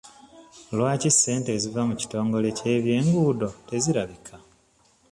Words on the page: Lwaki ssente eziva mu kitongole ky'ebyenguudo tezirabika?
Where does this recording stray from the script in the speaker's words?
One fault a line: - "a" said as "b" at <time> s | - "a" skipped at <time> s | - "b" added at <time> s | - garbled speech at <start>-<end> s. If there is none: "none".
none